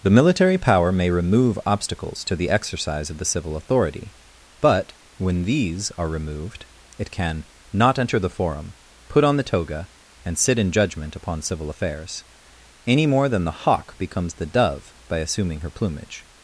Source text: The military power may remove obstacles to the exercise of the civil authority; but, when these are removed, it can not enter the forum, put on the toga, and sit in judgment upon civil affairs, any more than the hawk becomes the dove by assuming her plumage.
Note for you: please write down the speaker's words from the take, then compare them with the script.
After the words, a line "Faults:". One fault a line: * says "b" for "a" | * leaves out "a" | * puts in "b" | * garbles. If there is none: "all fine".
The military power may remove obstacles to the exercise of the civil authority; but, when these are removed, it can not enter the forum, put on the toga, and sit in judgment upon civil affairs, any more than the hawk becomes the dove by assuming her plumage.
Faults:
all fine